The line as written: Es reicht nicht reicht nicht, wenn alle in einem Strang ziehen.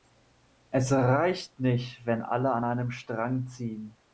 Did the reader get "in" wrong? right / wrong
wrong